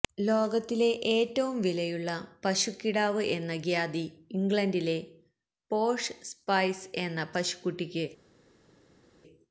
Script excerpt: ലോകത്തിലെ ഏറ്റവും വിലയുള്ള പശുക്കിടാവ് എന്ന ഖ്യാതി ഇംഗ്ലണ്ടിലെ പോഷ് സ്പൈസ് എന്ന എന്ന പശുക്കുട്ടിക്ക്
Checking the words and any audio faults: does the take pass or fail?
fail